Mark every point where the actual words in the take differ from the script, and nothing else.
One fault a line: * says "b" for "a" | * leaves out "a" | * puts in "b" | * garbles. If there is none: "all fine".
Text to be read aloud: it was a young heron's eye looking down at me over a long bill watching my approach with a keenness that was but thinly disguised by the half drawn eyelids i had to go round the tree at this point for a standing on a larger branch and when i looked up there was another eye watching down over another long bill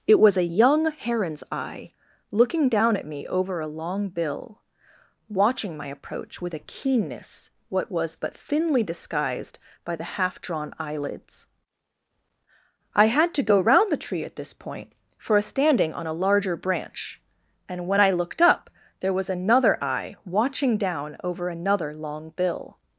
* says "what" for "that"